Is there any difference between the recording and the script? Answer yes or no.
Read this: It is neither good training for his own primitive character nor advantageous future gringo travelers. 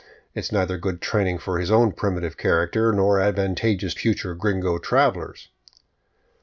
no